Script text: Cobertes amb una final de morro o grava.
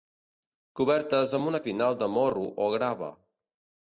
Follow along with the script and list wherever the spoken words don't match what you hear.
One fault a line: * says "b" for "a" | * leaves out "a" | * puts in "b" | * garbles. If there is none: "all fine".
all fine